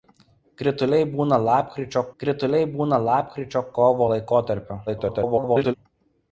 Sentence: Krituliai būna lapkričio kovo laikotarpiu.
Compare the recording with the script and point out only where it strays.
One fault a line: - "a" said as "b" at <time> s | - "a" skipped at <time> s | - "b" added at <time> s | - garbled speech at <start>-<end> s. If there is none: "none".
- "krituliai būna lapkričio" added at 2.2 s
- garbled speech at 4.9-5.7 s